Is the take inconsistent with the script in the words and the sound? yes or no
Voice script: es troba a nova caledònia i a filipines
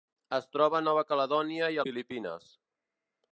no